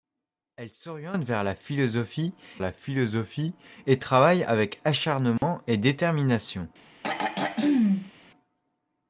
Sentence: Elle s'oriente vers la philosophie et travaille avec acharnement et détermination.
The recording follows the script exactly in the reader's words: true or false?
false